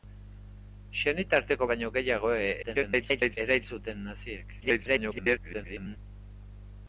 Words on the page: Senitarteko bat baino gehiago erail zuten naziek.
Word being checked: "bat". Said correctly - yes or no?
no